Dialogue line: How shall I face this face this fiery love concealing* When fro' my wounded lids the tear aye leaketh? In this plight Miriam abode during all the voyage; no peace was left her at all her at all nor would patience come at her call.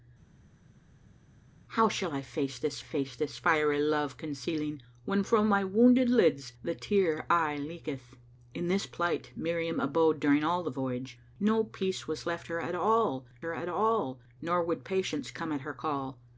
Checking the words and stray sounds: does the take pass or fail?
pass